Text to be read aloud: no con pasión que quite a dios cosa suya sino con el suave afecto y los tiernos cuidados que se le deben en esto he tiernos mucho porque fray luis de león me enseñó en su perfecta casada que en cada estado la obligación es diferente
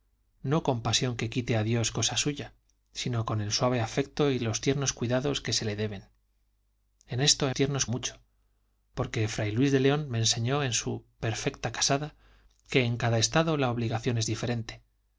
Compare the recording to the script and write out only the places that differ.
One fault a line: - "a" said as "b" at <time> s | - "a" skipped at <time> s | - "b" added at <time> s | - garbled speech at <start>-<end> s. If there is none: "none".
none